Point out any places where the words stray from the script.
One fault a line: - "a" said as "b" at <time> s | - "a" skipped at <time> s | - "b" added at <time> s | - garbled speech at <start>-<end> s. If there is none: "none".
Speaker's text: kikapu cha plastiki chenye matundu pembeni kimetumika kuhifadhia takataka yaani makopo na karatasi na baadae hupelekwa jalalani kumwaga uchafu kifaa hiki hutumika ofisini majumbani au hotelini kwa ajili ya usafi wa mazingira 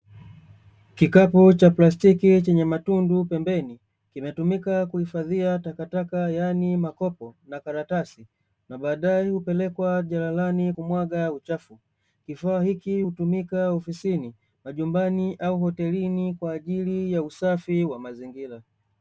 none